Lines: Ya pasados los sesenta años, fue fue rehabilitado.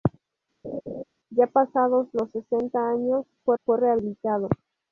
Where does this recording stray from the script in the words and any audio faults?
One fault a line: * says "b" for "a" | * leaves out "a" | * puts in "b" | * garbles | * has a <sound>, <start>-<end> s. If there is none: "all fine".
* has a laugh, 0.6-1.0 s